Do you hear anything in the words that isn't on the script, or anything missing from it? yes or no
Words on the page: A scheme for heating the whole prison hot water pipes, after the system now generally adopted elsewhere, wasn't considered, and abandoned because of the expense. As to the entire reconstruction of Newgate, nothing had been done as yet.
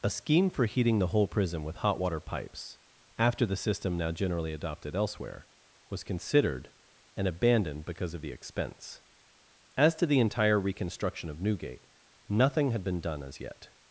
yes